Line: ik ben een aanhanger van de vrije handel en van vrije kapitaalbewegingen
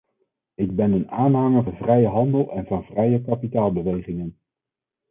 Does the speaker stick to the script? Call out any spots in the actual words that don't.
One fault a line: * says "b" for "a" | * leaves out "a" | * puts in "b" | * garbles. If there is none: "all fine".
* leaves out "van"